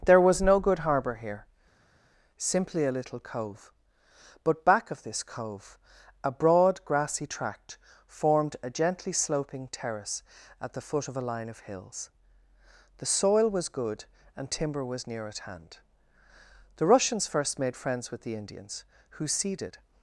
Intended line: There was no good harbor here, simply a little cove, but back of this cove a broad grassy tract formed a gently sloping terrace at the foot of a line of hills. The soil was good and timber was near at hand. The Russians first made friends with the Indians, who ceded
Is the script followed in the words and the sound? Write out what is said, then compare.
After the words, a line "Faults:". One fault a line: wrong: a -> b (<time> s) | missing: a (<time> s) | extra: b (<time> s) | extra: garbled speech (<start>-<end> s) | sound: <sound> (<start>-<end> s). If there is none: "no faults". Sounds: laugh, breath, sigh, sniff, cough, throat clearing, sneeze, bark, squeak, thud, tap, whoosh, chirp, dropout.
There was no good harbor here, simply a little cove, but back of this cove a broad grassy tract formed a gently sloping terrace at the foot of a line of hills. The soil was good and timber was near at hand. The Russians first made friends with the Indians, who ceded
Faults:
no faults